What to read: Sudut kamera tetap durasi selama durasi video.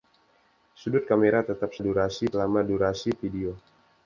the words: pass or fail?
pass